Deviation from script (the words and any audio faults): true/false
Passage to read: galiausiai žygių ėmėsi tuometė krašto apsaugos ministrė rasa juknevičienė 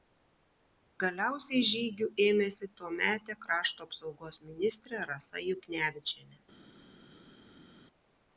false